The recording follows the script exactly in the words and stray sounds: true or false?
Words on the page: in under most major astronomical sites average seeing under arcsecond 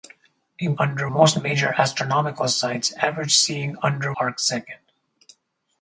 true